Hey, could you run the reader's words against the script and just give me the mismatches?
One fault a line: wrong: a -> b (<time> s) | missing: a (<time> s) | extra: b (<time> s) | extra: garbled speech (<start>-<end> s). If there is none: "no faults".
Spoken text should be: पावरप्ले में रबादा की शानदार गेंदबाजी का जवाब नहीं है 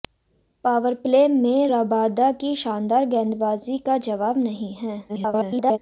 extra: garbled speech (5.1-5.8 s)